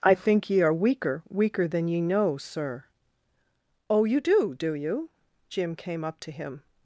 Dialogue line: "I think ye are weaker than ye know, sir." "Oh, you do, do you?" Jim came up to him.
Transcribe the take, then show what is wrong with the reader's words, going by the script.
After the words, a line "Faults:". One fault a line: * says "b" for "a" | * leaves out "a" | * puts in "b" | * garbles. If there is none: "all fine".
"I think ye are weaker weaker than ye know, sir." "Oh, you do, do you?" Jim came up to him.
Faults:
* puts in "weaker"